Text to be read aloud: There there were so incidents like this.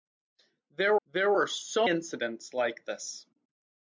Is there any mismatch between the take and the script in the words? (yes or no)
no